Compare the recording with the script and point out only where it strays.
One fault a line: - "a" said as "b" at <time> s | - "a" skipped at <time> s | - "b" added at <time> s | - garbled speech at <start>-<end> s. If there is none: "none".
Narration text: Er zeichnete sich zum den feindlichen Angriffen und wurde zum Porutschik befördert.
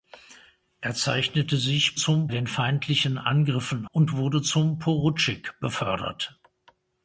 none